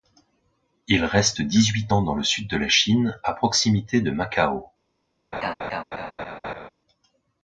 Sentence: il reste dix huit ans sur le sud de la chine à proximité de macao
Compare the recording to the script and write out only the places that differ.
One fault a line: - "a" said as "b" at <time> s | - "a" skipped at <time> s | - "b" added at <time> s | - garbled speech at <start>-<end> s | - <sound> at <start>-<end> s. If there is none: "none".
- "sur" said as "dans" at 2.0 s
- laugh at 5.3-6.7 s